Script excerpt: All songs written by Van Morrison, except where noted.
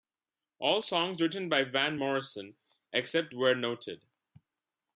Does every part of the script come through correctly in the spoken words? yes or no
yes